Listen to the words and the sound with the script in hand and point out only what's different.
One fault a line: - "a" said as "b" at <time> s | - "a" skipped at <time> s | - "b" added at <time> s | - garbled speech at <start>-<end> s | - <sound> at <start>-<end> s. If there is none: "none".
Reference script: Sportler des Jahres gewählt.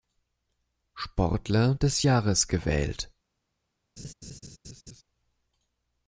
- laugh at 4.0-5.0 s